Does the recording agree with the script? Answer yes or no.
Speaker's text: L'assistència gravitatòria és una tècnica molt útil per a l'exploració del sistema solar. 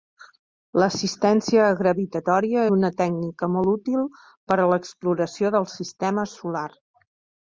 no